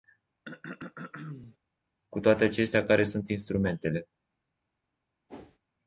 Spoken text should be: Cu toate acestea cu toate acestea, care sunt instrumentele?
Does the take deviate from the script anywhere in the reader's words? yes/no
yes